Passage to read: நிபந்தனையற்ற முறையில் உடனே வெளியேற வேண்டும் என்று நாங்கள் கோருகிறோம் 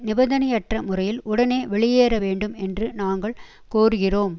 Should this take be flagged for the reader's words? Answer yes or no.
no